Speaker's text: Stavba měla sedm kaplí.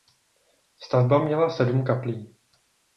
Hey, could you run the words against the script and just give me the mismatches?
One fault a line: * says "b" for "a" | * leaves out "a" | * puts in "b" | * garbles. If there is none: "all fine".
all fine